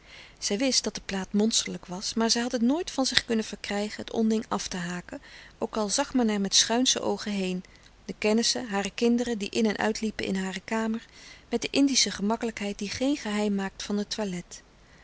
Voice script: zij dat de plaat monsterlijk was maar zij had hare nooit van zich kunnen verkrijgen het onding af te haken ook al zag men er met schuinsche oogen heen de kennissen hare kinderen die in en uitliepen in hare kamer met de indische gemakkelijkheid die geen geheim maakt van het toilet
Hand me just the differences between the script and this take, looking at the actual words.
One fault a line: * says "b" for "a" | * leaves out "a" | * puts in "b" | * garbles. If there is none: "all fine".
* puts in "wist"
* says "het" for "hare"